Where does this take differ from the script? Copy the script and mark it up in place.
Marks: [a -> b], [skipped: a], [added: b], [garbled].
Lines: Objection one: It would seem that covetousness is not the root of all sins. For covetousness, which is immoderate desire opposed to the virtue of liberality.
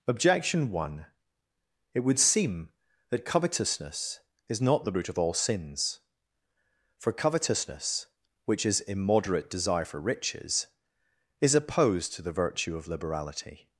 Objection one: It would seem that covetousness is not the root of all sins. For covetousness, which is immoderate desire [added: for riches is] opposed to the virtue of liberality.